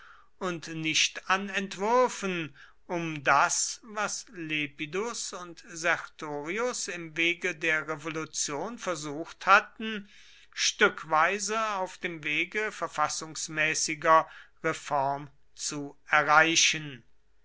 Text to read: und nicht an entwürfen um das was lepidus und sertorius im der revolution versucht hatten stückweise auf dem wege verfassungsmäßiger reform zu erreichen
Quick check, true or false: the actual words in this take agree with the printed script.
false